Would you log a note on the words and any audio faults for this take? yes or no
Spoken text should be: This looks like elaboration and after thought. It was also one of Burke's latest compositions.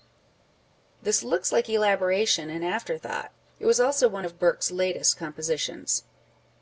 no